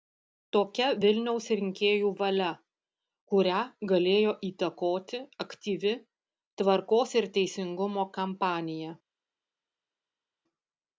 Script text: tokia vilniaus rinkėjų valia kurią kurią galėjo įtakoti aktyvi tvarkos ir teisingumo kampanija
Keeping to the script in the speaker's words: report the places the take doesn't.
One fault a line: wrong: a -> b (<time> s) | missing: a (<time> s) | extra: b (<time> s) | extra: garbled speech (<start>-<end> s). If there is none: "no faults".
missing: kurią (3.6 s)